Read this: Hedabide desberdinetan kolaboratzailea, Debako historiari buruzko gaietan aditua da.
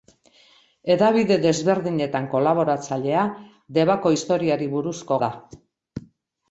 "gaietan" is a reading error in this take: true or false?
true